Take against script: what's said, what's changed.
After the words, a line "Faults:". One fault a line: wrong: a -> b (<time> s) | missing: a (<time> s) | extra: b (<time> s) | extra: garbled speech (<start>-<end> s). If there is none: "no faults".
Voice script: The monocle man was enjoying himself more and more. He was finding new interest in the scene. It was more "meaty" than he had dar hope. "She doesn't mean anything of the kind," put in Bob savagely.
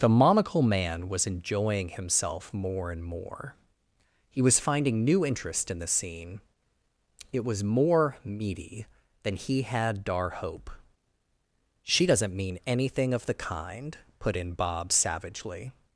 The monocle man was enjoying himself more and more. He was finding new interest in the scene. It was more "meaty" than he had dar hope. "She doesn't mean anything of the kind," put in Bob savagely.
Faults:
no faults